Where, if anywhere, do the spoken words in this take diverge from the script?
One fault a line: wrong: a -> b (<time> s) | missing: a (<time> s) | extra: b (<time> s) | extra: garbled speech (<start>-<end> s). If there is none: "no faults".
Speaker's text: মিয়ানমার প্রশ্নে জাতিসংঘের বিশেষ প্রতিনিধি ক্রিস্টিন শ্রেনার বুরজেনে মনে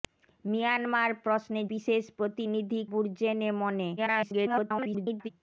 missing: জাতিসংঘের (1.6 s)
missing: ক্রিস্টিন শ্রেনার (2.8 s)
extra: garbled speech (4.0-5.3 s)